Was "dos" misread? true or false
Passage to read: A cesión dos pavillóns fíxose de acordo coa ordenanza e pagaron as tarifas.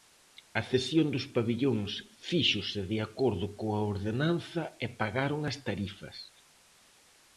false